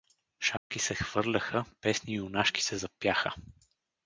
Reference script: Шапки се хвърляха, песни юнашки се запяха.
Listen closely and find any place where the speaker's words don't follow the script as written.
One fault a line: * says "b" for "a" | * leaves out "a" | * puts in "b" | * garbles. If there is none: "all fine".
all fine